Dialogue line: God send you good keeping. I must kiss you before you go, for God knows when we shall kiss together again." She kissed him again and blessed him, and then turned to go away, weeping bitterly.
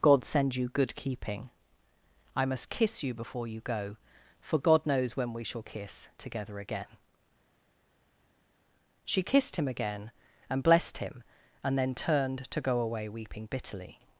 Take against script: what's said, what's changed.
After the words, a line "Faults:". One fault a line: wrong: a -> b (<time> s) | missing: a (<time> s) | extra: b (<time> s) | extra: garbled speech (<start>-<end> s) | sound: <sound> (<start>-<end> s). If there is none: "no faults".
God send you good keeping. I must kiss you before you go, for God knows when we shall kiss together again." She kissed him again and blessed him, and then turned to go away, weeping bitterly.
Faults:
no faults